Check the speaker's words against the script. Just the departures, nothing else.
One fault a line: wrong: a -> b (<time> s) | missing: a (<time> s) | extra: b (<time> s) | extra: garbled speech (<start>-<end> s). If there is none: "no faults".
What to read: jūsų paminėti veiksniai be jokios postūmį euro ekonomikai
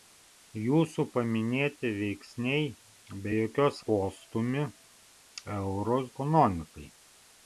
no faults